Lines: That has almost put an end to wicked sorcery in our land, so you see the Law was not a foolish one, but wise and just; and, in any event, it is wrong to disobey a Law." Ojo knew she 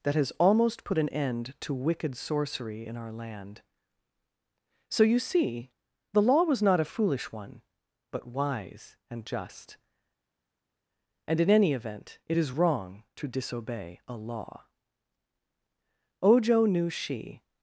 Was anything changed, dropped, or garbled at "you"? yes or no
no